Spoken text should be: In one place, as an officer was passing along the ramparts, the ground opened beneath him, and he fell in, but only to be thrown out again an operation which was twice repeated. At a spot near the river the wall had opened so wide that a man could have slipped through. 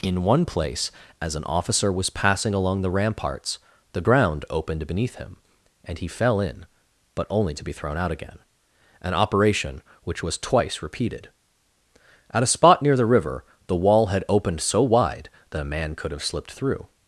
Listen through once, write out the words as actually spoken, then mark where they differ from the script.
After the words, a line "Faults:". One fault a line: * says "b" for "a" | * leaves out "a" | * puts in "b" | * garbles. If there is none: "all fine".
In one place, as an officer was passing along the ramparts, the ground opened beneath him, and he fell in, but only to be thrown out again an operation which was twice repeated. At a spot near the river the wall had opened so wide that a man could have slipped through.
Faults:
all fine